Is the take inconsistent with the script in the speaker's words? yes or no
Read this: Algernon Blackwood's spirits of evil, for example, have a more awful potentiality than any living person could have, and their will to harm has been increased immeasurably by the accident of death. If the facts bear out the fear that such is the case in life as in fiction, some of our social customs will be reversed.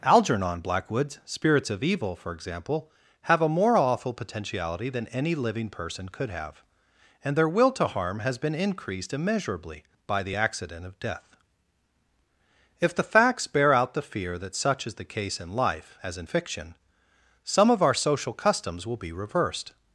no